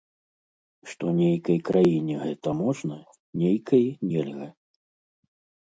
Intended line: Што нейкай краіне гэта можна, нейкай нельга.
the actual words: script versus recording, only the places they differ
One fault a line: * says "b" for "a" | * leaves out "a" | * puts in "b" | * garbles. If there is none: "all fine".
all fine